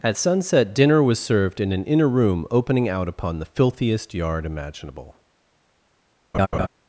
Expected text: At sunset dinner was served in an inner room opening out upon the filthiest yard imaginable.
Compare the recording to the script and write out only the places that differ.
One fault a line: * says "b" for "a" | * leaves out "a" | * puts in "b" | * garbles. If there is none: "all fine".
all fine